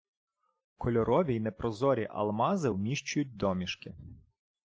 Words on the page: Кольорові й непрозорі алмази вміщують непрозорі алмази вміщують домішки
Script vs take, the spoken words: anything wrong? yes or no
yes